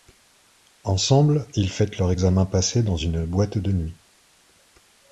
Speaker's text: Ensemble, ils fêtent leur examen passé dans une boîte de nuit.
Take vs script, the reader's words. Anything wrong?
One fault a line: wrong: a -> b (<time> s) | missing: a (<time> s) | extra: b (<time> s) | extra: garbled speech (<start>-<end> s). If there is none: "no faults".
no faults